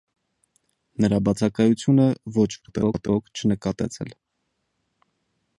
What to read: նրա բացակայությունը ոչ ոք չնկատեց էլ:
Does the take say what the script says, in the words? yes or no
no